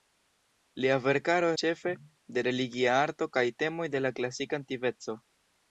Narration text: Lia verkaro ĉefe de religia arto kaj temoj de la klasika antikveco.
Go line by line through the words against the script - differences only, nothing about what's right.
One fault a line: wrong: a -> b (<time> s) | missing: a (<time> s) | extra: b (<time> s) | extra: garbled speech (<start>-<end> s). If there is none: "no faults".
no faults